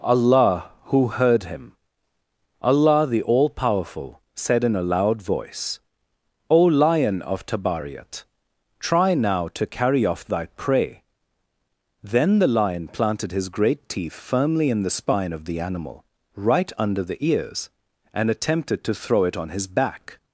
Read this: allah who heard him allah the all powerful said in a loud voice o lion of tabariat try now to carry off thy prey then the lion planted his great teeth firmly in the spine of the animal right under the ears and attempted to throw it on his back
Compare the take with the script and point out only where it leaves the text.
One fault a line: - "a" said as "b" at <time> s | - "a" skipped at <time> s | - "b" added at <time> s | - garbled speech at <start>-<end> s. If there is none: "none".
none